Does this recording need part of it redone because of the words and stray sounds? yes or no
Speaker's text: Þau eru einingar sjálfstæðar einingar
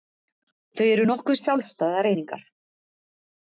yes